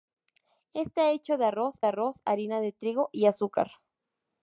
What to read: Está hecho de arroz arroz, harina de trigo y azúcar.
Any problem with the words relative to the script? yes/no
no